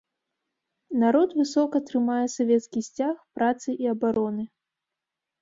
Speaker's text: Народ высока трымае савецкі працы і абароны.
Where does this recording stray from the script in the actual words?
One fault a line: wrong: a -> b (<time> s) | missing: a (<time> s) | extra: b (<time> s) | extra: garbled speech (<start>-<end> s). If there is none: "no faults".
extra: сцяг (2.9 s)